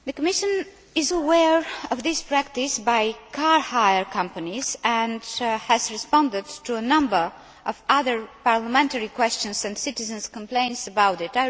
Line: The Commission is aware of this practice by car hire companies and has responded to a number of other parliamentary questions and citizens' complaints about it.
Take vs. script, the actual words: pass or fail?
pass